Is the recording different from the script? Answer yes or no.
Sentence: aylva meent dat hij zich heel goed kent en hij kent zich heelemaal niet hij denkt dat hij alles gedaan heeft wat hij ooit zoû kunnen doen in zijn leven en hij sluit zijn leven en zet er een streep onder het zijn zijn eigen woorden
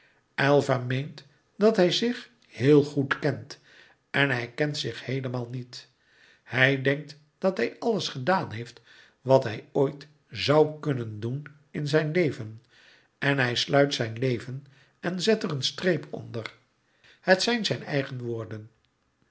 no